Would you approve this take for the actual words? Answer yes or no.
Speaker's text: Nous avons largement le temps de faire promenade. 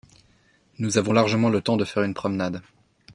no